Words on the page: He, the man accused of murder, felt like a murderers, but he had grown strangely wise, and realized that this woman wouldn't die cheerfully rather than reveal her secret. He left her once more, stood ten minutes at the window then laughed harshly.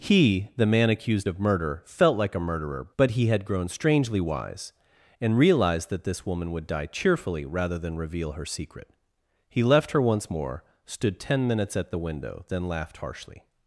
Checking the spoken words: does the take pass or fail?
fail